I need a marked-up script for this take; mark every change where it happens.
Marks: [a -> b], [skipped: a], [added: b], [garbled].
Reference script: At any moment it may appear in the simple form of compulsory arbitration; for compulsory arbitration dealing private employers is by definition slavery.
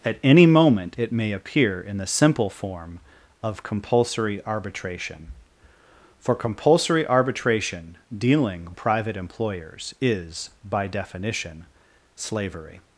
At any moment it may appear in the simple form of compulsory arbitration; for compulsory arbitration dealing private employers is by definition slavery.